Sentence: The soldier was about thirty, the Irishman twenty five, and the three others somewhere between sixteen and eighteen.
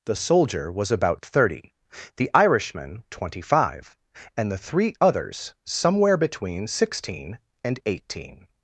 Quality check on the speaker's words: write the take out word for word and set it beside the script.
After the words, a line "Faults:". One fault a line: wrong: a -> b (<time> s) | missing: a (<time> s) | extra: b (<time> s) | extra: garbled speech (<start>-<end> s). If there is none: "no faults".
The soldier was about thirty, the Irishman twenty five, and the three others somewhere between sixteen and eighteen.
Faults:
no faults